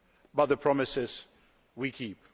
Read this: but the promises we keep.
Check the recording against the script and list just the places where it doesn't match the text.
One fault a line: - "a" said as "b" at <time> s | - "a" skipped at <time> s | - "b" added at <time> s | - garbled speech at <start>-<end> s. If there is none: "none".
none